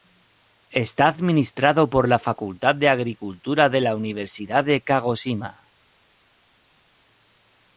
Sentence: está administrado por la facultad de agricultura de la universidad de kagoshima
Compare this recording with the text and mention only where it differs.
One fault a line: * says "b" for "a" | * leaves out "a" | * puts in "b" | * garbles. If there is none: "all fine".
all fine